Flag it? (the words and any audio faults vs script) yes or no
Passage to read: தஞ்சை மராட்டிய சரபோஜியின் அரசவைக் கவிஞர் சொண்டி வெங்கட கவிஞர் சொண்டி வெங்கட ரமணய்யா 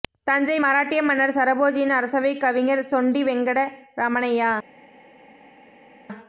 yes